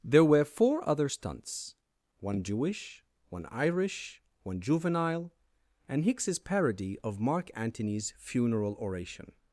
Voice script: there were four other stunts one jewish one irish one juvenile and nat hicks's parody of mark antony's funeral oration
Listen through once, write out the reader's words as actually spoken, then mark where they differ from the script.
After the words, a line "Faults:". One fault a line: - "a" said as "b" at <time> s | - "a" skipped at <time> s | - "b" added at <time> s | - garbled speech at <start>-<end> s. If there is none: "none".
there were four other stunts one jewish one irish one juvenile and hicks's parody of mark antony's funeral oration
Faults:
- "nat" skipped at 6.0 s